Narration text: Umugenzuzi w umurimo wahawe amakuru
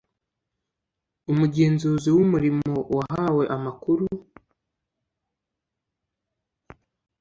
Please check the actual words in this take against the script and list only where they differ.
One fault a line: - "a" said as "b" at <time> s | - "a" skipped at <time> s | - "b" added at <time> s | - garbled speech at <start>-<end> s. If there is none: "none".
none